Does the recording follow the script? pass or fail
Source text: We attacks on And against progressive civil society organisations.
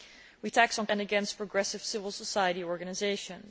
pass